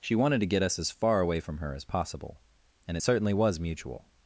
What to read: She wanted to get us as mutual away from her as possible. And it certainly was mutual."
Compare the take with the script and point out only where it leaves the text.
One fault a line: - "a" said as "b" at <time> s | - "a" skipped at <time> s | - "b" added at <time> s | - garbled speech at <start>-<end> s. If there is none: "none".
- "mutual" said as "far" at 0.9 s